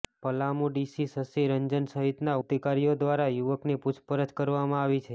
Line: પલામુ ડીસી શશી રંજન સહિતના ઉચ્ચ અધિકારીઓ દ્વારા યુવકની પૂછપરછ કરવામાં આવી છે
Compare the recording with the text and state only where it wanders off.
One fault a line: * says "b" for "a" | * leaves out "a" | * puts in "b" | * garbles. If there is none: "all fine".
* leaves out "ઉચ્ચ"